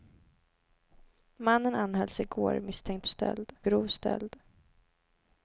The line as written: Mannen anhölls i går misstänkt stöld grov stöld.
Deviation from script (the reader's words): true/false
false